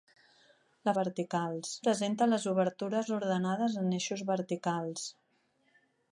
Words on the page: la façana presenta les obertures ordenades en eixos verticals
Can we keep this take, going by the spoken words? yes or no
no